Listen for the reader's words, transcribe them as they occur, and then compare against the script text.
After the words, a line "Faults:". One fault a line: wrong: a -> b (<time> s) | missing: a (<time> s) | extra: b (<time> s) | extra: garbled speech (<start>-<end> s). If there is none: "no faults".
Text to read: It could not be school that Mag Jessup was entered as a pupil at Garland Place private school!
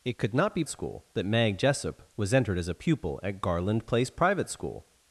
It could not be school that Mag Jessup was entered as a pupil at Garland Place private school!
Faults:
no faults